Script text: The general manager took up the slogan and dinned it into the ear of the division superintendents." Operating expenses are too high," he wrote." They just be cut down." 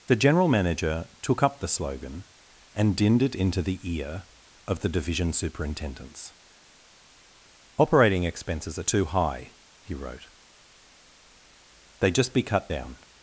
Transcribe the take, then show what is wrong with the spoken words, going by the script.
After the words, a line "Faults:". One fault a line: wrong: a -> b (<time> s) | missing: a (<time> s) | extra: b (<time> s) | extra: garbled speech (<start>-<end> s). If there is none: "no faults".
The general manager took up the slogan and dinned it into the ear of the division superintendents." Operating expenses are too high," he wrote." They just be cut down."
Faults:
no faults